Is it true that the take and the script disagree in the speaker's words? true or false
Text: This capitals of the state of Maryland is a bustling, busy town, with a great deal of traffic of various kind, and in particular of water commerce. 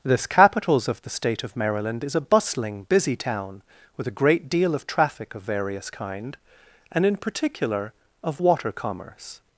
false